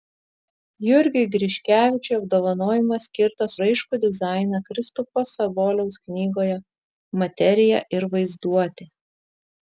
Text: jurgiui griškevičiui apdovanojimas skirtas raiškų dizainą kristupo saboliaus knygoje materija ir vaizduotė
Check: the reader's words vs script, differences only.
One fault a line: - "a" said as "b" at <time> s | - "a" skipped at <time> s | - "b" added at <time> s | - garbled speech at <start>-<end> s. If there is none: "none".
none